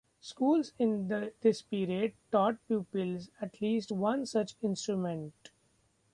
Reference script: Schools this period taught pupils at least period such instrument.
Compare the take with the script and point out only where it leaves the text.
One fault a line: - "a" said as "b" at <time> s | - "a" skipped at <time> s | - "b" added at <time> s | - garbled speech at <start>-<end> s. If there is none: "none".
- "in" added at 0.8 s
- "period" said as "one" at 3.9 s